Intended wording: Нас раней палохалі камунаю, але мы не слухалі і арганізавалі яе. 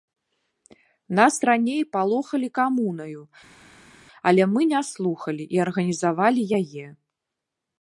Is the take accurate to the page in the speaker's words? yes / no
yes